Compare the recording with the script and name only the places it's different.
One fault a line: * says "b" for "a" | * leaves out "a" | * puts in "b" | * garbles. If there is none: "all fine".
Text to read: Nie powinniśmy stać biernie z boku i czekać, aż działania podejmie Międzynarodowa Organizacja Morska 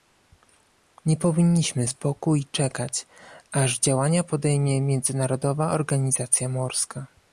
* leaves out "stać biernie"